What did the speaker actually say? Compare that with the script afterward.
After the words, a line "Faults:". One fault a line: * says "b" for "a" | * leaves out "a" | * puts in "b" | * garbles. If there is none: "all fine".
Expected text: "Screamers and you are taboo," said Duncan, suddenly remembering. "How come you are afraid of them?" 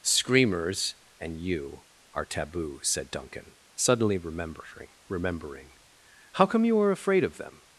"Screamers and you are taboo," said Duncan, suddenly remembering remembering. "How come you are afraid of them?"
Faults:
* puts in "remembering"